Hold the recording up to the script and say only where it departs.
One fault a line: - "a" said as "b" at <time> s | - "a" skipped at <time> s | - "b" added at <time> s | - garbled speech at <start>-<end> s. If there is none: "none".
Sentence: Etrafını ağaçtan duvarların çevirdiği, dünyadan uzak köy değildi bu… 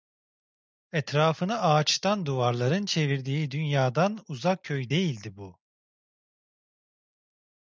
none